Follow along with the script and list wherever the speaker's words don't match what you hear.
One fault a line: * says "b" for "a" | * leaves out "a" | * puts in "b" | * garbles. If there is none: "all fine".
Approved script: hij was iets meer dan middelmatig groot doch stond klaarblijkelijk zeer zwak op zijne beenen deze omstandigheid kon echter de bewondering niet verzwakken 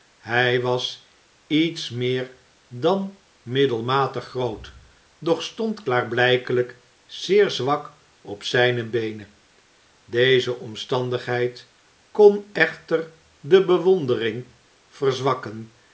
* leaves out "niet"